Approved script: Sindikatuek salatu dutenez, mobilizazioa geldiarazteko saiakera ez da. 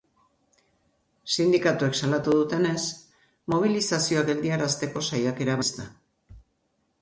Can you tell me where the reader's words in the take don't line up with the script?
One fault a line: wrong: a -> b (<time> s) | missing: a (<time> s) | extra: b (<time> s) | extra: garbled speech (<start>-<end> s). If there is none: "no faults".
no faults